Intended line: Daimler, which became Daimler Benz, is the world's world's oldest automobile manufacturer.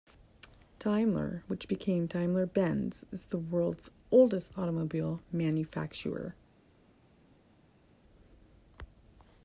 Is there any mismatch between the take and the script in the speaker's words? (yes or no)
yes